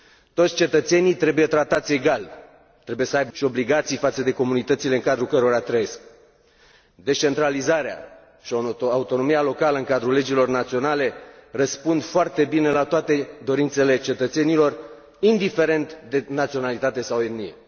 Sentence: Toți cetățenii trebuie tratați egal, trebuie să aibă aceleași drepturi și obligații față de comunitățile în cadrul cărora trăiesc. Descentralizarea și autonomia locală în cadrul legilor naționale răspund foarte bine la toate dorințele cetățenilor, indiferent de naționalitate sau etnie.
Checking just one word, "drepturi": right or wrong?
wrong